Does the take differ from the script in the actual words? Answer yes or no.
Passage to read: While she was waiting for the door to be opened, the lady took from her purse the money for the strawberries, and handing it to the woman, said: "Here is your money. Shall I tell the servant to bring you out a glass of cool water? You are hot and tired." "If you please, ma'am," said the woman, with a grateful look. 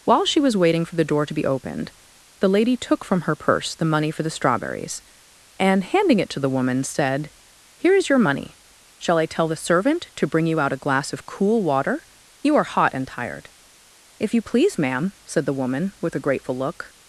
no